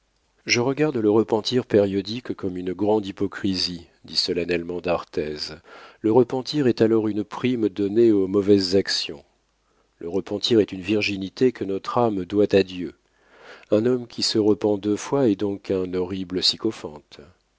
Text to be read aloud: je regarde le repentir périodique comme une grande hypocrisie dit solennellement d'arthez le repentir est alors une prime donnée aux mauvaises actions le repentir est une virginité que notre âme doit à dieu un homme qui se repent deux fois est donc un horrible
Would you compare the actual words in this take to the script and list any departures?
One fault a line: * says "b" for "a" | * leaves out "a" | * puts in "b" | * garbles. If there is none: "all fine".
all fine